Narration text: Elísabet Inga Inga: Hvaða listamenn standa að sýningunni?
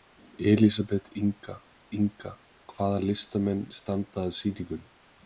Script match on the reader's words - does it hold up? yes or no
yes